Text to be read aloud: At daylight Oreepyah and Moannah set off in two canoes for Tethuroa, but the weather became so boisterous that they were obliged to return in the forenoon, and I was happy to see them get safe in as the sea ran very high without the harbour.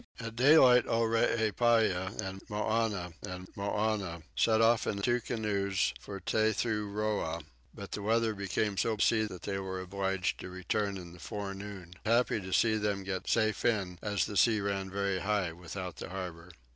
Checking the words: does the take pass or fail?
fail